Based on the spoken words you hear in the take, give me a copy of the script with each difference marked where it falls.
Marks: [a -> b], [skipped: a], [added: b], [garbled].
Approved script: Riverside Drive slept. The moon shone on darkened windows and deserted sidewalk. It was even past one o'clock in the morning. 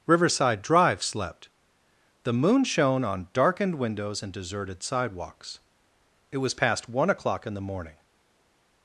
Riverside Drive slept. The moon shone on darkened windows and deserted [sidewalk. -> sidewalks] It was [skipped: even] past one o'clock in the morning.